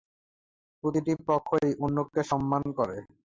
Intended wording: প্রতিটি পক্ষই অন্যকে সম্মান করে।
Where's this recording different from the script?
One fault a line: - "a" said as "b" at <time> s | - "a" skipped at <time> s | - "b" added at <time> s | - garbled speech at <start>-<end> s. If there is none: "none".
none